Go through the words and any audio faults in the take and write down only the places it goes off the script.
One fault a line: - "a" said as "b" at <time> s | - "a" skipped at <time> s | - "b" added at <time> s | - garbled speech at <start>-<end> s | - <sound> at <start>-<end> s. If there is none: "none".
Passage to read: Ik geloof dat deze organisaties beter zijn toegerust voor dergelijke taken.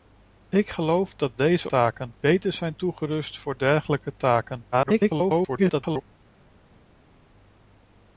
- "organisaties" said as "taken" at 1.7 s
- garbled speech at 4.7-6.0 s